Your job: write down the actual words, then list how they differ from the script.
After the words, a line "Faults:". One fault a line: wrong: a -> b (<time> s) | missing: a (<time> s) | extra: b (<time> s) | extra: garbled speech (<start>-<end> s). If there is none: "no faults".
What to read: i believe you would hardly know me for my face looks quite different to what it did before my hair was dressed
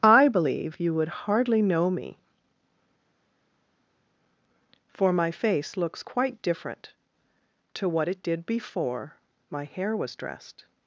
i believe you would hardly know me for my face looks quite different to what it did before my hair was dressed
Faults:
no faults